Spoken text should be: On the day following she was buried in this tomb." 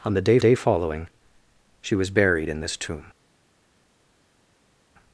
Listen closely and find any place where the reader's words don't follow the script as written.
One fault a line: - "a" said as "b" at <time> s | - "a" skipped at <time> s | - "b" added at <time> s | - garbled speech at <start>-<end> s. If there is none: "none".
- "day" added at 0.4 s